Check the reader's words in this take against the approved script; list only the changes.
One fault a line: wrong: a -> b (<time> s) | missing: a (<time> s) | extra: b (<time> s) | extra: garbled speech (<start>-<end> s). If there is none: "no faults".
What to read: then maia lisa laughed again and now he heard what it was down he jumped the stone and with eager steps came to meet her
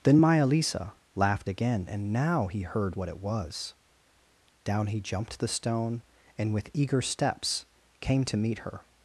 no faults